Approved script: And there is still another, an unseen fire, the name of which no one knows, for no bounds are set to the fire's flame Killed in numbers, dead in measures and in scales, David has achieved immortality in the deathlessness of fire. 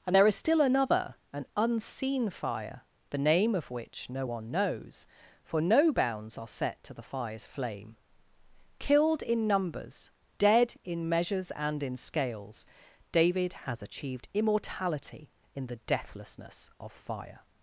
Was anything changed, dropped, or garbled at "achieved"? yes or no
no